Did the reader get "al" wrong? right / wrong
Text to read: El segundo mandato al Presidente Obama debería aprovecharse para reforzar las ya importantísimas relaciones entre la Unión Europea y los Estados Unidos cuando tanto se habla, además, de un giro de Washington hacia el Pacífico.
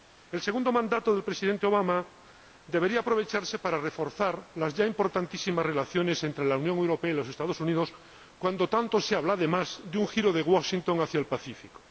wrong